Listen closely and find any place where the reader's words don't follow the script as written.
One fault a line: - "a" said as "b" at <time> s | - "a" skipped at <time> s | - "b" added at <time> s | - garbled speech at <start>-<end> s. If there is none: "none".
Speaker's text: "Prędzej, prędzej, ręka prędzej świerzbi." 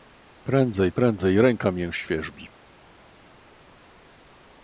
- "prędzej" said as "mię" at 1.7 s